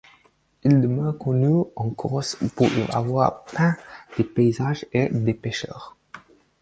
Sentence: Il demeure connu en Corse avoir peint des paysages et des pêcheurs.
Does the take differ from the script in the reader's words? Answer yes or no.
yes